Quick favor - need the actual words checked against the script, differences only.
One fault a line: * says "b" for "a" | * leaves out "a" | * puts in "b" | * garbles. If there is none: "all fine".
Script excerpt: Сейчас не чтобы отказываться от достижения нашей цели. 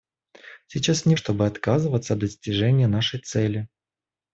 all fine